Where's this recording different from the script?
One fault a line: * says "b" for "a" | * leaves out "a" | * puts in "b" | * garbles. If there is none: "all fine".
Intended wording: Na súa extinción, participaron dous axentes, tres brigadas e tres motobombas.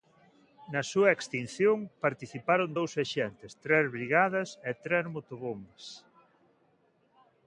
all fine